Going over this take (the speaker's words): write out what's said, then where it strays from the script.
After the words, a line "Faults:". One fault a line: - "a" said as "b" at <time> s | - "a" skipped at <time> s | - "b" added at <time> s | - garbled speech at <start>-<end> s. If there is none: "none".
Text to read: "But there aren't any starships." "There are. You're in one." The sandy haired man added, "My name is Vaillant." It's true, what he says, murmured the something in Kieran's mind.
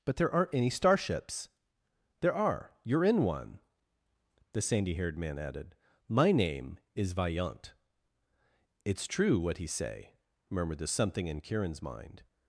"But there aren't any starships." "There are. You're in one." The sandy haired man added, "My name is Vaillant." It's true, what he say, murmured the something in Kieran's mind.
Faults:
- "says" said as "say" at 9.7 s